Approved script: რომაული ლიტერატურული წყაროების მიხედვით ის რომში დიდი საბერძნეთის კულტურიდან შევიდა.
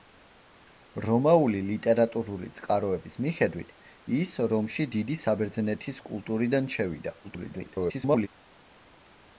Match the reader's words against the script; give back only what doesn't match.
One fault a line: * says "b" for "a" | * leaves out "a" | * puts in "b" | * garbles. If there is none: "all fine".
* garbles